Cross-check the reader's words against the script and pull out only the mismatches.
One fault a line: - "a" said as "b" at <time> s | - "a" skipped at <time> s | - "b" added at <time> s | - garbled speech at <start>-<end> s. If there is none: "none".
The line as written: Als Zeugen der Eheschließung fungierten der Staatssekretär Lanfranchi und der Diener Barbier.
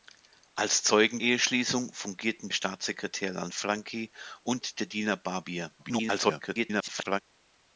- "der" skipped at 1.2 s
- "der" skipped at 2.5 s
- garbled speech at 5.8-7.2 s